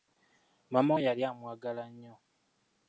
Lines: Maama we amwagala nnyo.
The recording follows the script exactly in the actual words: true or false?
false